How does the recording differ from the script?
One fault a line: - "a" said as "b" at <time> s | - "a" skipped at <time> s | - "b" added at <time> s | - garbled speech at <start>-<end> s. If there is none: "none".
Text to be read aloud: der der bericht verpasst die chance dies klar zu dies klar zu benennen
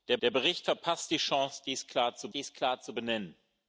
none